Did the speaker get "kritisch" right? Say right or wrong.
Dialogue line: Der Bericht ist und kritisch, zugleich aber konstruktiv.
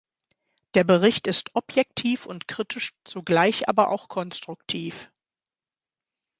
right